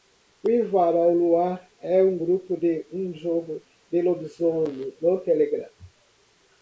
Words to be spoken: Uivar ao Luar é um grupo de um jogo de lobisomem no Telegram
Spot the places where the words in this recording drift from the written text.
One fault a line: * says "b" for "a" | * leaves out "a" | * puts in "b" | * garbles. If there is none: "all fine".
all fine